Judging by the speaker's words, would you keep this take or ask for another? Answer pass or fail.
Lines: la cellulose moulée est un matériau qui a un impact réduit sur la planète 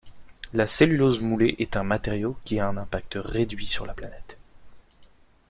pass